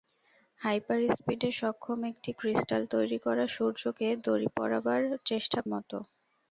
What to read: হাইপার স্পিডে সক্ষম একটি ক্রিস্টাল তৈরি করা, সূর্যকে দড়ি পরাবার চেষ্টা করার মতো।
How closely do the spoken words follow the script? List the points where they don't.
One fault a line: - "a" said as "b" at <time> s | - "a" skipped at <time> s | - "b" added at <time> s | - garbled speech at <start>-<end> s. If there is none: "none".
- "করার" skipped at 5.6 s